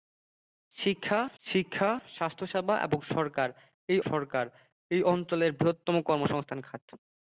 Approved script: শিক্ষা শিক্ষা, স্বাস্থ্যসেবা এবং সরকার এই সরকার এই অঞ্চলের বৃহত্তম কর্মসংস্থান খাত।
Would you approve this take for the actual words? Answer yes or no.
yes